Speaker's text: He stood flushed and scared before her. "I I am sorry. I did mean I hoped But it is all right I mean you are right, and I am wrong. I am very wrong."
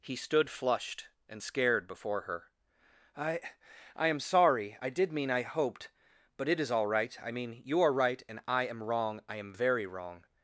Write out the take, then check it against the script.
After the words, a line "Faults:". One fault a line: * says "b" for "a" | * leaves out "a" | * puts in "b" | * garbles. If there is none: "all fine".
He stood flushed and scared before her. "I I am sorry. I did mean I hoped But it is all right I mean you are right, and I am wrong. I am very wrong."
Faults:
all fine